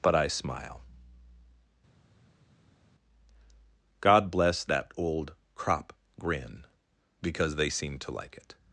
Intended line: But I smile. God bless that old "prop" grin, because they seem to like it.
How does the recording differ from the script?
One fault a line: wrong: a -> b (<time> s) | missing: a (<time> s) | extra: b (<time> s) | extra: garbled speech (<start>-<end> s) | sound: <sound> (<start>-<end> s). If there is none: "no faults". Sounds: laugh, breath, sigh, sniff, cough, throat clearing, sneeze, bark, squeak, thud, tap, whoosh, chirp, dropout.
wrong: prop -> crop (5.5 s)